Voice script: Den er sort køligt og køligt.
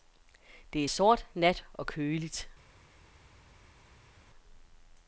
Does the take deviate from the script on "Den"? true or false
true